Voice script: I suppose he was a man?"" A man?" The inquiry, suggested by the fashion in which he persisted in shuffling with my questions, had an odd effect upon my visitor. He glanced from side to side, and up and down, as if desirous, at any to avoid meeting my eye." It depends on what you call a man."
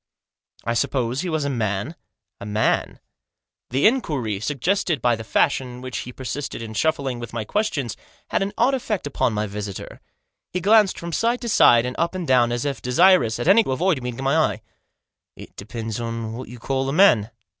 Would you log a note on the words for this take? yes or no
no